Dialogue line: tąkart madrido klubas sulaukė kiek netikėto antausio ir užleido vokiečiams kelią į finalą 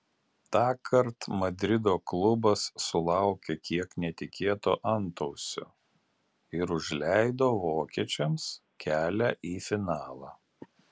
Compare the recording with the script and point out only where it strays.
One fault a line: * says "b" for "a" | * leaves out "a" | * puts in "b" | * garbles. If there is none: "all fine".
all fine